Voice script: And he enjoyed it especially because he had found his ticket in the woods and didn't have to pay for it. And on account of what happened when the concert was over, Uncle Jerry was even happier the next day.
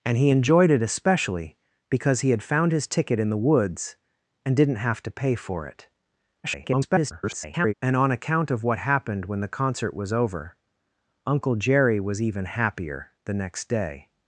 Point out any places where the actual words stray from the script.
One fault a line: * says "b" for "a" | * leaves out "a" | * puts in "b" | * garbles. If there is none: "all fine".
* garbles